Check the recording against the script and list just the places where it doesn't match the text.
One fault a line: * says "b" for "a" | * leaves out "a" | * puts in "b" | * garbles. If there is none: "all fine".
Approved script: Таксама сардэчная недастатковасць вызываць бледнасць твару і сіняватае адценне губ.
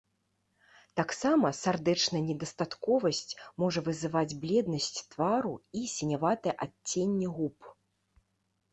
* puts in "можа"